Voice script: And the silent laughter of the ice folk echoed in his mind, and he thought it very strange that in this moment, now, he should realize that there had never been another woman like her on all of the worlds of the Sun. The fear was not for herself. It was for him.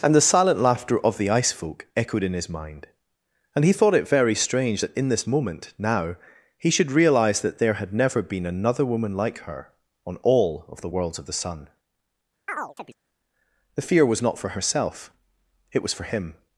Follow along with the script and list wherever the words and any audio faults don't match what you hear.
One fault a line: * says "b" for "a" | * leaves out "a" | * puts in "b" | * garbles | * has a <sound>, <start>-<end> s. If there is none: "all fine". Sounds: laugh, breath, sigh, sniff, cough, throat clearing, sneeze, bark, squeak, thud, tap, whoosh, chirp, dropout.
* has a chirp, 12.5-13.0 s